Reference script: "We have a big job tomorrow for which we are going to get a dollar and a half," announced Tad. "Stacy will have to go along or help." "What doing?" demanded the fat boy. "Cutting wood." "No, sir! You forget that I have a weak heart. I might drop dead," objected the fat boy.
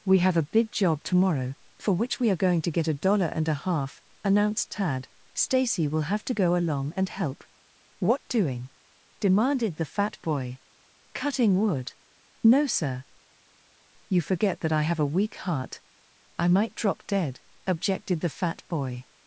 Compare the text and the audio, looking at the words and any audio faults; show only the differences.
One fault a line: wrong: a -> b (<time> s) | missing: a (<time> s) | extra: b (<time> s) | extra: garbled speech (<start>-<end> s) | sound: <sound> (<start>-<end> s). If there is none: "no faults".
wrong: or -> and (7.0 s)